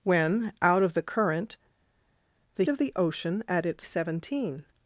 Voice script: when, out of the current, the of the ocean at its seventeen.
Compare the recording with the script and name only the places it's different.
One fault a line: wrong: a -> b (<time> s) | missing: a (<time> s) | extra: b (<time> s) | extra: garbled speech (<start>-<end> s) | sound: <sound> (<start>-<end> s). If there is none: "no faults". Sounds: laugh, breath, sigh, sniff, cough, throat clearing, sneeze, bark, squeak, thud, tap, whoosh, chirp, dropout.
no faults